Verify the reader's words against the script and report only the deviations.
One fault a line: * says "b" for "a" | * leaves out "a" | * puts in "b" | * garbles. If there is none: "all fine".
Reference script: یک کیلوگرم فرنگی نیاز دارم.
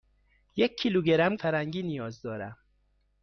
all fine